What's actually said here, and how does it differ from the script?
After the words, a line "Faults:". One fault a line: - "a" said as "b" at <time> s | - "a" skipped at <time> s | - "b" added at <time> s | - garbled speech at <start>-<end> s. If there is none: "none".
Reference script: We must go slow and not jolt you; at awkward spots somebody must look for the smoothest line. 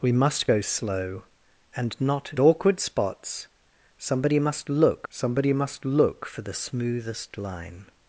We must go slow and not awkward spots somebody must look somebody must look for the smoothest line.
Faults:
- "jolt you at awkward spots" said as "awkward spots somebody must look" at 2.4 s